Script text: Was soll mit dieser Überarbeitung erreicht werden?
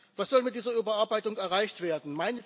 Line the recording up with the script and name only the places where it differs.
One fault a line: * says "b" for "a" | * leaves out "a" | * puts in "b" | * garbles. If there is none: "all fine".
all fine